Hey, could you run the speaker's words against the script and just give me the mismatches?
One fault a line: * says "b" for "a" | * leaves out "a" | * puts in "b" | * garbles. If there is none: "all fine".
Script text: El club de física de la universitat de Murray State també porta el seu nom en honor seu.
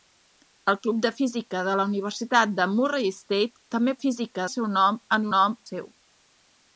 * says "física" for "porta"
* says "nom" for "honor"